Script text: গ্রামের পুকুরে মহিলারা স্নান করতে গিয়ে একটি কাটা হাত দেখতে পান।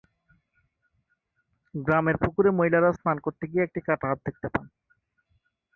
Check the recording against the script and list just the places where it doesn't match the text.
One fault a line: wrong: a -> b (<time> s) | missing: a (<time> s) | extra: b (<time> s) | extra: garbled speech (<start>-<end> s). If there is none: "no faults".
no faults